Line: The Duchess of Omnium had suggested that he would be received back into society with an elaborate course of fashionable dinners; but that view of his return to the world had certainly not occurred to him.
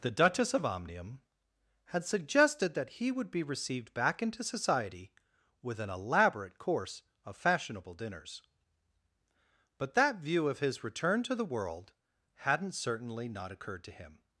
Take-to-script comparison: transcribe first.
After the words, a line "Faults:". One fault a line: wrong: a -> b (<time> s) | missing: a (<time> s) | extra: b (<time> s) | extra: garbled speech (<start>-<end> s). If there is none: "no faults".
The Duchess of Omnium had suggested that he would be received back into society with an elaborate course of fashionable dinners; but that view of his return to the world hadn't certainly not occurred to him.
Faults:
wrong: had -> hadn't (12.3 s)